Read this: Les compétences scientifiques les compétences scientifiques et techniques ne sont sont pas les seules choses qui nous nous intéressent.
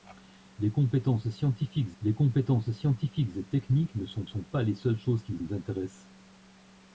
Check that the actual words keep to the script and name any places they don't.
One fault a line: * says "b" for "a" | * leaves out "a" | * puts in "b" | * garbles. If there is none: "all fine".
all fine